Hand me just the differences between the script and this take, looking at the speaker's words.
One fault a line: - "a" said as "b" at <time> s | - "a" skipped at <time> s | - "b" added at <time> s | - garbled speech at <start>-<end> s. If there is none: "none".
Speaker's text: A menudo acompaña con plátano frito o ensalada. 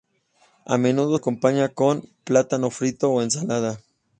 none